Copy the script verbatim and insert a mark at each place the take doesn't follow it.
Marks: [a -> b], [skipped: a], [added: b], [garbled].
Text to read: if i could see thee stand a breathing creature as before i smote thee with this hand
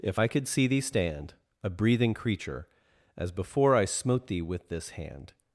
if i could see thee stand a breathing creature as before i smote thee with this hand